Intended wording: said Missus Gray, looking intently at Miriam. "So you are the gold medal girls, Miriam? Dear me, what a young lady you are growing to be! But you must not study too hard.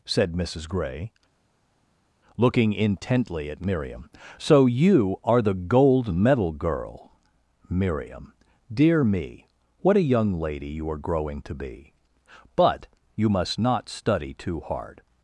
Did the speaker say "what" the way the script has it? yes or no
yes